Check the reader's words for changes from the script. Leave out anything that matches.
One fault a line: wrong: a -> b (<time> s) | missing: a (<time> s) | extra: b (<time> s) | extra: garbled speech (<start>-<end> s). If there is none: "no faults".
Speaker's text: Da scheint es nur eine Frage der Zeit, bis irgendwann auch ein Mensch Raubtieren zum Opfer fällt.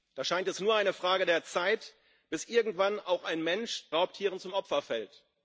no faults